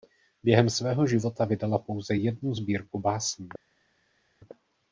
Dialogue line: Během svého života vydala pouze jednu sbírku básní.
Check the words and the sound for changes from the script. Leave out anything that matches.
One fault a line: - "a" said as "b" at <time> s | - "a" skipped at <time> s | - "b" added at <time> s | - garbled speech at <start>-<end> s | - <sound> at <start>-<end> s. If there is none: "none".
none